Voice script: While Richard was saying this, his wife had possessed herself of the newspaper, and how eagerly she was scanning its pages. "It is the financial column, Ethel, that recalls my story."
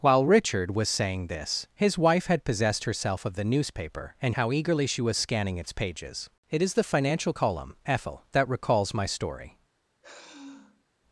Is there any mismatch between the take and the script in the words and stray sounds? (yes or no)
yes